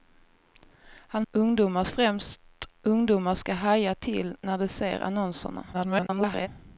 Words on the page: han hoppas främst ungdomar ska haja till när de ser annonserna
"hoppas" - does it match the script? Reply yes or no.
no